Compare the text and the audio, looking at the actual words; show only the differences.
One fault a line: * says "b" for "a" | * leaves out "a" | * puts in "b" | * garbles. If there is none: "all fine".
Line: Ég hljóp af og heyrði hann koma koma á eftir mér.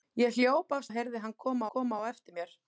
all fine